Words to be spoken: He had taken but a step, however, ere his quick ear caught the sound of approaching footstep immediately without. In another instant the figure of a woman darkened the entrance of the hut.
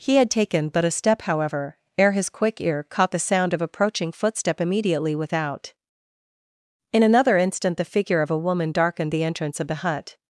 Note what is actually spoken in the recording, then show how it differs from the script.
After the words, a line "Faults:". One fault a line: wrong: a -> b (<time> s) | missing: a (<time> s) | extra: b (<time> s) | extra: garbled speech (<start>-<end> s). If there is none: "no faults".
He had taken but a step, however, ere his quick ear caught the sound of approaching footstep immediately without. In another instant the figure of a woman darkened the entrance of the hut.
Faults:
no faults